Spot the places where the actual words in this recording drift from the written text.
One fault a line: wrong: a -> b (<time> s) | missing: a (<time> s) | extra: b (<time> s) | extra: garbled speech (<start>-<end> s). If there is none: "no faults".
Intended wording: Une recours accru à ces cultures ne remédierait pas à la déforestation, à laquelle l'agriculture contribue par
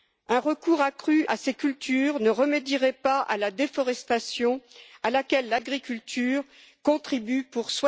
wrong: Une -> Un (0.3 s)
wrong: par -> pour (7.4 s)